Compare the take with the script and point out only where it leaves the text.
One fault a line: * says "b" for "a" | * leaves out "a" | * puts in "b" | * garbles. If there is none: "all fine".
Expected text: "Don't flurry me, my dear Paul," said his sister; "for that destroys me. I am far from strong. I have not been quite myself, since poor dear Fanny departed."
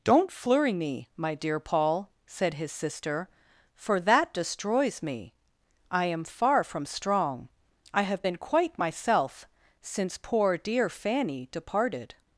* leaves out "not"